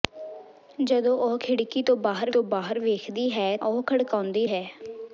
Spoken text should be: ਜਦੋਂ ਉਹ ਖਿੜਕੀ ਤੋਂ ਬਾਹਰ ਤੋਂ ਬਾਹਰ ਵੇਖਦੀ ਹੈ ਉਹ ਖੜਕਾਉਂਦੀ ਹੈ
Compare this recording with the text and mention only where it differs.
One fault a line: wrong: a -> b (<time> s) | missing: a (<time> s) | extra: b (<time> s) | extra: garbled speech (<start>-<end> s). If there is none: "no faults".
no faults